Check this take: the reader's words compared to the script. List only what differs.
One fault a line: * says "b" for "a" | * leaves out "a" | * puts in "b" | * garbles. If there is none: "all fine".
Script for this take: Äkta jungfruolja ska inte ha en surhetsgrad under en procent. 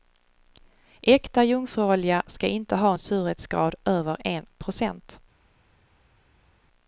* says "över" for "under"